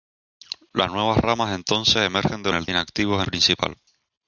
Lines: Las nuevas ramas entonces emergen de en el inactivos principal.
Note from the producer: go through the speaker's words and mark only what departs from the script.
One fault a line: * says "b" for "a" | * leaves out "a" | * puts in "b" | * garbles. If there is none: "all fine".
all fine